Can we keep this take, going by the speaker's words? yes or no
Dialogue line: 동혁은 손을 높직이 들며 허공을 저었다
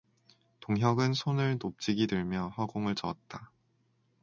yes